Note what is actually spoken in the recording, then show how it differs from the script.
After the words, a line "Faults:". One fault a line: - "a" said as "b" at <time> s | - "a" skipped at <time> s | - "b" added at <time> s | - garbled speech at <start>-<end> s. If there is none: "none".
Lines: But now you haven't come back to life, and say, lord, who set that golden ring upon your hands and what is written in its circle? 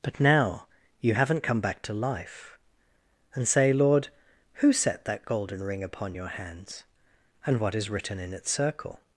But now you haven't come back to life, and say, lord, who set that golden ring upon your hands and what is written in its circle?
Faults:
none